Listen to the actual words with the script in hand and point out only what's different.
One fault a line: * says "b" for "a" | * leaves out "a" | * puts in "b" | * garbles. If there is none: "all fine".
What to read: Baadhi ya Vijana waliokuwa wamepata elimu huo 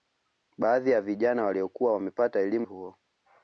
all fine